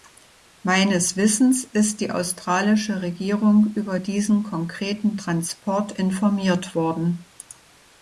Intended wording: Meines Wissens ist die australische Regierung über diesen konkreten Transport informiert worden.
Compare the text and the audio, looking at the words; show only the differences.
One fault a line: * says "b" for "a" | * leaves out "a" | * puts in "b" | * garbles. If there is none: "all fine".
all fine